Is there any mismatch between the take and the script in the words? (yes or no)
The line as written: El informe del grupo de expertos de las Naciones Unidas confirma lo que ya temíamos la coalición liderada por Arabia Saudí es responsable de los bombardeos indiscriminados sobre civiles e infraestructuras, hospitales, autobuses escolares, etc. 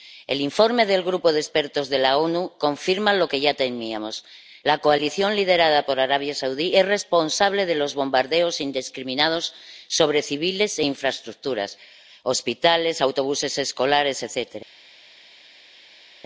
no